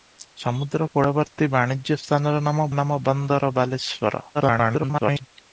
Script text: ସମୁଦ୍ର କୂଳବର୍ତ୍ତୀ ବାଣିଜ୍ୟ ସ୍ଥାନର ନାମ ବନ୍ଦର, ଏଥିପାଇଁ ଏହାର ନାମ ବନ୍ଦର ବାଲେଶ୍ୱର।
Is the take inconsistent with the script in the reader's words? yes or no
yes